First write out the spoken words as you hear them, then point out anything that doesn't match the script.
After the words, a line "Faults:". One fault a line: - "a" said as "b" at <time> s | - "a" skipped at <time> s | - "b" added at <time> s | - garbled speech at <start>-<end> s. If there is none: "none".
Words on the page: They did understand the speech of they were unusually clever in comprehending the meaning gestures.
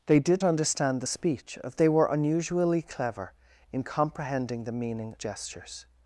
They did understand the speech of they were unusually clever in comprehending the meaning gestures.
Faults:
none